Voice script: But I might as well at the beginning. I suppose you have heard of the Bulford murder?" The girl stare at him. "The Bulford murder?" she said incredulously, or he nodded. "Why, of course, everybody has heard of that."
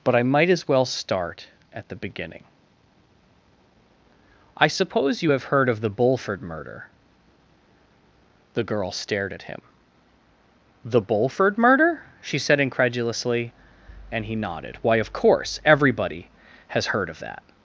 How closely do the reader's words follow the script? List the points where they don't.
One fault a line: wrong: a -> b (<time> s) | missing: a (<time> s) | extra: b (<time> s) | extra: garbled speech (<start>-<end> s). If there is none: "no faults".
extra: start (0.8 s)
wrong: stare -> stared (8.9 s)
wrong: or -> and (14.1 s)